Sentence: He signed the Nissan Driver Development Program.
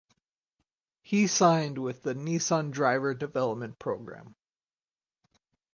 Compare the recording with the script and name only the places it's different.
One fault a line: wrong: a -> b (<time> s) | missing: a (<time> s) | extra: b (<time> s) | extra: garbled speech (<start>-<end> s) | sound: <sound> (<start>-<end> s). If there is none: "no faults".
extra: with (1.8 s)